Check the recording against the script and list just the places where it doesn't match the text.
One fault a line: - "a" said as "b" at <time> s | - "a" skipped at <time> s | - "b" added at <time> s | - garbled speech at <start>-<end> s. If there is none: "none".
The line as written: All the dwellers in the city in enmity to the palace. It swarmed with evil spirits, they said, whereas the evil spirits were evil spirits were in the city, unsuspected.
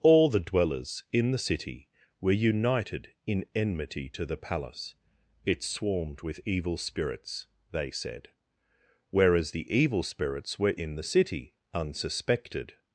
- "were united" added at 2.2 s
- "evil spirits were" skipped at 10.7 s